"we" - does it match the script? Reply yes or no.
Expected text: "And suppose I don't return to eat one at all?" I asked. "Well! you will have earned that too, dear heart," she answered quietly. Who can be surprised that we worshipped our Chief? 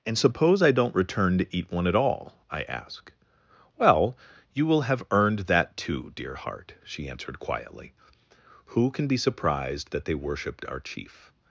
no